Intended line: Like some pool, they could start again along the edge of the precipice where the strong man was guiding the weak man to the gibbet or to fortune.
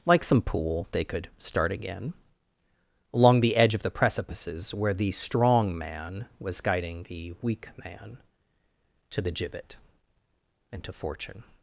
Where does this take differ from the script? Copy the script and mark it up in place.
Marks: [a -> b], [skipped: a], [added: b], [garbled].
Like some pool, they could start again along the edge of the [precipice -> precipices] where the strong man was guiding the weak man to the gibbet [or -> and] to fortune.